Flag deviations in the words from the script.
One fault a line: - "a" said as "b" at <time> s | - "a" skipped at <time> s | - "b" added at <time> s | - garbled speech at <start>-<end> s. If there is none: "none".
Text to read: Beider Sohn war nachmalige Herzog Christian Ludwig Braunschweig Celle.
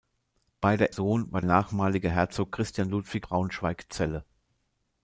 none